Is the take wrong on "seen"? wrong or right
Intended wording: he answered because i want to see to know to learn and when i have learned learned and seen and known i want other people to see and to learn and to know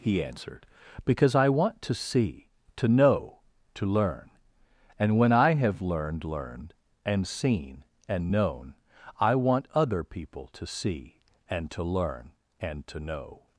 right